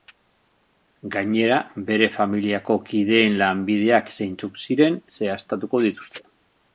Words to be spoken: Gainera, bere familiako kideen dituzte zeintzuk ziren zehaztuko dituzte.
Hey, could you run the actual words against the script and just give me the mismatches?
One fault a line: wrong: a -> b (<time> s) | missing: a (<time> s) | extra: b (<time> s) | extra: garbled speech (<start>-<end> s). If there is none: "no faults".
wrong: dituzte -> lanbideak (3.4 s)